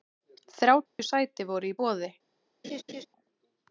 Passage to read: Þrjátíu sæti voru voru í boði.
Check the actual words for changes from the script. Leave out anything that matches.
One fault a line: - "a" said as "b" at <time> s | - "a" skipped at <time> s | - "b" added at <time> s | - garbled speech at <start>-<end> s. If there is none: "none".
- "voru" skipped at 1.7 s